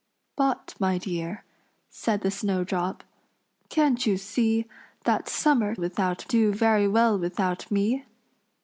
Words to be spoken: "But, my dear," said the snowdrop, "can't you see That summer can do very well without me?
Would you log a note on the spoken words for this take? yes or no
yes